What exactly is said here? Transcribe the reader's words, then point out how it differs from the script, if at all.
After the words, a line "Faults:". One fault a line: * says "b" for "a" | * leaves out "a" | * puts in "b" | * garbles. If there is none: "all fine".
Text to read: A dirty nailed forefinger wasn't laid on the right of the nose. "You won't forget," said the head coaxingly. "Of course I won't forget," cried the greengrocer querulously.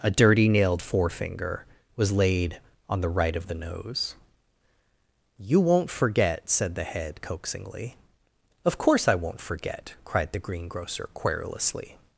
A dirty nailed forefinger was laid on the right of the nose. "You won't forget," said the head coaxingly. "Of course I won't forget," cried the greengrocer querulously.
Faults:
* says "was" for "wasn't"